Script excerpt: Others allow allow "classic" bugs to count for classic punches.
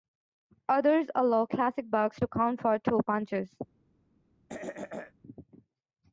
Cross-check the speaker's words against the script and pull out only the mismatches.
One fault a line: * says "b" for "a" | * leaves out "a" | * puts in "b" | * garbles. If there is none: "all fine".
* leaves out "allow"
* says "two" for "classic"